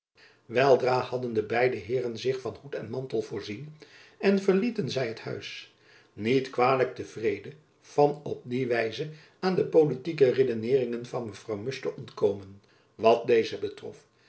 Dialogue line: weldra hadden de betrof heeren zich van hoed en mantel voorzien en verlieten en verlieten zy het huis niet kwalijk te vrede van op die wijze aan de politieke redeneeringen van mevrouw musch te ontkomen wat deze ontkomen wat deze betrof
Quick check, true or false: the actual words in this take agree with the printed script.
false